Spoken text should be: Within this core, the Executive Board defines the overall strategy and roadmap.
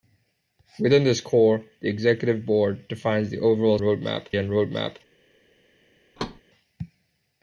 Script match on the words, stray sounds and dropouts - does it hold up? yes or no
no